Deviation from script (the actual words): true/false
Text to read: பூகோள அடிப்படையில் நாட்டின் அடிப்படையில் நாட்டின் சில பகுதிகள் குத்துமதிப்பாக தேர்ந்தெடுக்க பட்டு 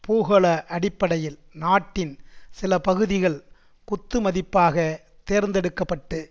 true